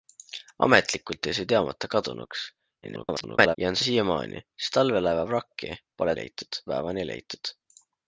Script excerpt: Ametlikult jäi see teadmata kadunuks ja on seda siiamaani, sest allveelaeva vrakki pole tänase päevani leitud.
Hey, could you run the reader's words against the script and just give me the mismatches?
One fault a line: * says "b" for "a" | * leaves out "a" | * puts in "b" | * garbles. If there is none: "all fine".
* garbles
* leaves out "seda"
* says "leitud" for "tänase"